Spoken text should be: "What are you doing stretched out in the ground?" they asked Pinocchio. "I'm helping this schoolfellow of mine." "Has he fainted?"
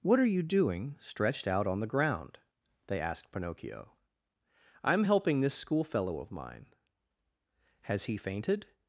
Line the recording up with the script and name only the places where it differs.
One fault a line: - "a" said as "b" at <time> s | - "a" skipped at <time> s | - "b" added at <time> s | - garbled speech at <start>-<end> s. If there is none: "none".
- "in" said as "on" at 1.7 s